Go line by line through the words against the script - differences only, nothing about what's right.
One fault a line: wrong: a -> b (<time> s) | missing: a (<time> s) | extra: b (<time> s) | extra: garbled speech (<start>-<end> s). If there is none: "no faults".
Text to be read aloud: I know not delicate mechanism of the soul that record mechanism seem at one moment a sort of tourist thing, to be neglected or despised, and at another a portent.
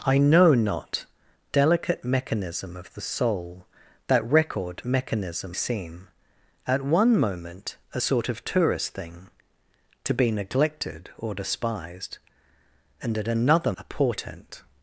no faults